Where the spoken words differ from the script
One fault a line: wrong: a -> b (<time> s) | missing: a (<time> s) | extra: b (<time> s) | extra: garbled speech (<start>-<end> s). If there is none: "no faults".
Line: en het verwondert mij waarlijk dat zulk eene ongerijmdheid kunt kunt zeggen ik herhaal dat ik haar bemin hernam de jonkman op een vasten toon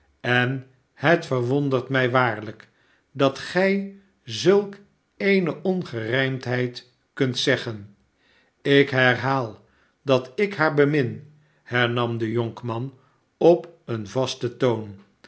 extra: gij (3.4 s)
missing: kunt (7.4 s)